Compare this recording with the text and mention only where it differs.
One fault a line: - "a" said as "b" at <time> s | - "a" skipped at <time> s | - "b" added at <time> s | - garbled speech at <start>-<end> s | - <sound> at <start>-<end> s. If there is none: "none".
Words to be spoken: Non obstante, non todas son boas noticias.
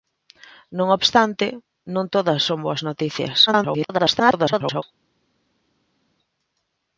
- garbled speech at 3.5-4.8 s